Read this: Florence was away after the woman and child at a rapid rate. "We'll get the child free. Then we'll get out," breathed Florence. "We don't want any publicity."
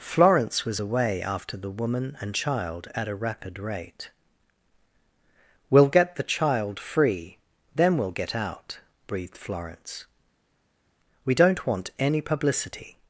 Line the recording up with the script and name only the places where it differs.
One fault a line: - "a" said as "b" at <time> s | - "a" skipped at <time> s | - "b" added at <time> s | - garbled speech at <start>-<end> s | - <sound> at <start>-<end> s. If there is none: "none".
none